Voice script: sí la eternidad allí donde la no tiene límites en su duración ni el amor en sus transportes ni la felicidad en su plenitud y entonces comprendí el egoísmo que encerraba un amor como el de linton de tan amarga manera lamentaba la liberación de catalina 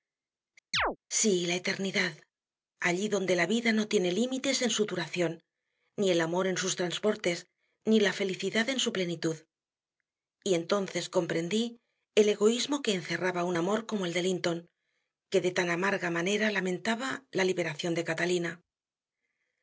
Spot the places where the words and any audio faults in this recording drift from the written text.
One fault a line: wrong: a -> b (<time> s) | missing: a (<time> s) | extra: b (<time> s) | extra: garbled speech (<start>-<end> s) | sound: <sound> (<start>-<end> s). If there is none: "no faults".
sound: chirp (0.7-1.0 s)
extra: vida (3.5 s)
extra: que (15.3 s)